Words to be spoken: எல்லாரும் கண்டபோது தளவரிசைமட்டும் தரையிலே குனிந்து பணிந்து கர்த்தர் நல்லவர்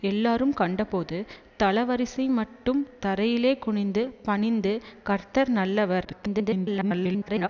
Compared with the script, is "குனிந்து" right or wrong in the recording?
right